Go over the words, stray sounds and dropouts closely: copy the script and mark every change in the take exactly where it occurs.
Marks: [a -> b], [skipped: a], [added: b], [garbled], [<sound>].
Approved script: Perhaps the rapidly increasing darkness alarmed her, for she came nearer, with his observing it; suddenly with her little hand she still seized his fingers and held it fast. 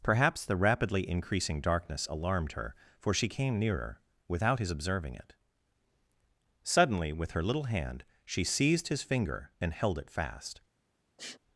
Perhaps the rapidly increasing darkness alarmed her, for she came nearer, [with -> without] his observing it; suddenly with her little hand she [skipped: still] seized his [fingers -> finger] and held it fast. [sniff]